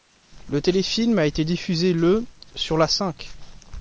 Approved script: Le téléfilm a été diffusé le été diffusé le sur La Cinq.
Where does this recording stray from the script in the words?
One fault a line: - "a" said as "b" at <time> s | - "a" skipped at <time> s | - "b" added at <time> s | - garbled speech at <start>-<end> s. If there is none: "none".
- "été diffusé le" skipped at 2.2 s